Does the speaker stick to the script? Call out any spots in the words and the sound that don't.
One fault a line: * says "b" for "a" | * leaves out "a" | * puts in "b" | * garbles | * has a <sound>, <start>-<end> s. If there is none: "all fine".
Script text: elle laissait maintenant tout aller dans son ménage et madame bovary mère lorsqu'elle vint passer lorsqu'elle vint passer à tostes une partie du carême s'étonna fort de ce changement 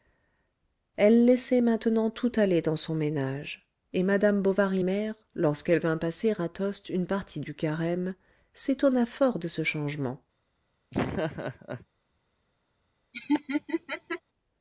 * leaves out "lorsqu'elle vint passer"
* has a laugh, 10.9-11.9 s
* has a laugh, 13.1-14.2 s